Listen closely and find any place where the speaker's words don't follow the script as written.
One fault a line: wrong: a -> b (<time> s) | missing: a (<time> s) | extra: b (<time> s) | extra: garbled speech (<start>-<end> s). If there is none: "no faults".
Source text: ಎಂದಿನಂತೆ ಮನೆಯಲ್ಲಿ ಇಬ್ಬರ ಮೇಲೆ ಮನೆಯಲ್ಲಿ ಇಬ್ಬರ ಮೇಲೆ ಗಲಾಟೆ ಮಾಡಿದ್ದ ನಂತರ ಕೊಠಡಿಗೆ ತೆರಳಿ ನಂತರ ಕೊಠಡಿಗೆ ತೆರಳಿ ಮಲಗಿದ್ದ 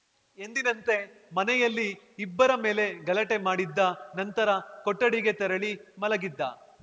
missing: ಮನೆಯಲ್ಲಿ ಇಬ್ಬರ ಮೇಲೆ (2.9 s)
missing: ನಂತರ ಕೊಠಡಿಗೆ ತೆರಳಿ (5.7 s)